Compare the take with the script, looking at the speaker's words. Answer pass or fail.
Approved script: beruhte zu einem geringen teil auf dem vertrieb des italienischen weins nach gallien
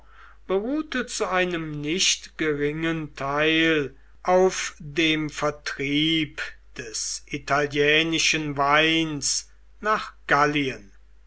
fail